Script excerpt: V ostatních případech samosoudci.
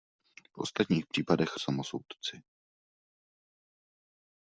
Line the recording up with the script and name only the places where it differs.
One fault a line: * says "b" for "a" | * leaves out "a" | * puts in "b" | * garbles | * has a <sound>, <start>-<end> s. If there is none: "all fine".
all fine